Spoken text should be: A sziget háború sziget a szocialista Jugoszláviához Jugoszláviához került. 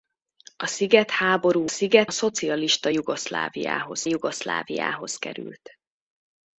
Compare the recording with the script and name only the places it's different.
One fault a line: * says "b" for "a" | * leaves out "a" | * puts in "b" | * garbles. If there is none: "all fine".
all fine